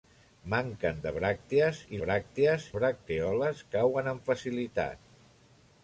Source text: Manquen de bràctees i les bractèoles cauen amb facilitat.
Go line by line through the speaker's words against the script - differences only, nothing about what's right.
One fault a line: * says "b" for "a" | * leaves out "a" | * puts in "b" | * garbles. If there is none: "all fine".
* says "bràctees" for "les"